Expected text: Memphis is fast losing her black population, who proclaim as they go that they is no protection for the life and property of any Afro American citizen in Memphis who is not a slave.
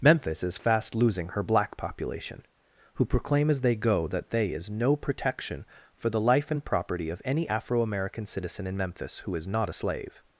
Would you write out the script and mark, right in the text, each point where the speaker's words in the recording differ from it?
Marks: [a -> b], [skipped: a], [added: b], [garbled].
Memphis is fast losing her black population, who proclaim as they go that they is no protection for the life and property of any Afro American citizen in Memphis who is not a slave.